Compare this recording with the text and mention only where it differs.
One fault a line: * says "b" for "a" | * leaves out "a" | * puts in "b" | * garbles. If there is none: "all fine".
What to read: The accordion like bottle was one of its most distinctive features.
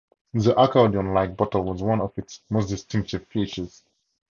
all fine